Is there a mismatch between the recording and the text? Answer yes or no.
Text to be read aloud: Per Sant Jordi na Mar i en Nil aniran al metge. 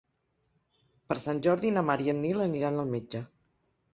no